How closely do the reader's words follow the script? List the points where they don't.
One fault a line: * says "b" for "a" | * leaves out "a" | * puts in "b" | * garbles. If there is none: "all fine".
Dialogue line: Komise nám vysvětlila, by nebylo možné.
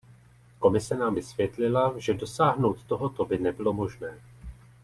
* puts in "že dosáhnout tohoto"